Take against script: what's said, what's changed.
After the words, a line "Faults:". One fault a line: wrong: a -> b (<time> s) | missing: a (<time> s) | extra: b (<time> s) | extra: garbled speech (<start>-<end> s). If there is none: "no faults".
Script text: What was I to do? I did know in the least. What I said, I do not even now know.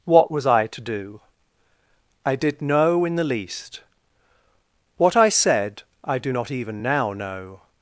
What was I to do? I did know in the least. What I said, I do not even now know.
Faults:
no faults